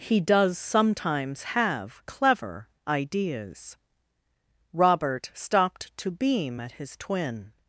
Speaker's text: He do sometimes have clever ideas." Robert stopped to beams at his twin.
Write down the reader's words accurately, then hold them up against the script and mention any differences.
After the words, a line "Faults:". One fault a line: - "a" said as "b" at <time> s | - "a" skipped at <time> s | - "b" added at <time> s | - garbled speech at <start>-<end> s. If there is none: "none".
He does sometimes have clever ideas." Robert stopped to beam at his twin.
Faults:
- "do" said as "does" at 0.2 s
- "beams" said as "beam" at 6.1 s